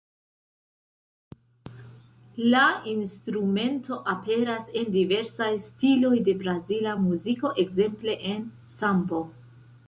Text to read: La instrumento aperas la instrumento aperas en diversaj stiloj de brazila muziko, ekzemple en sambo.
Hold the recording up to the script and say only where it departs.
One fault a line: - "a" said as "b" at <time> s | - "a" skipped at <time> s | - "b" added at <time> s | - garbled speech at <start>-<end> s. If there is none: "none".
- "la instrumento aperas" skipped at 4.7 s